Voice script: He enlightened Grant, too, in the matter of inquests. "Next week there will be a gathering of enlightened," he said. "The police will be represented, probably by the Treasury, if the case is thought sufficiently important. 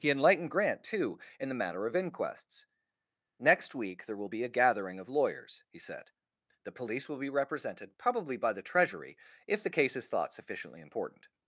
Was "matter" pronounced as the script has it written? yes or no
yes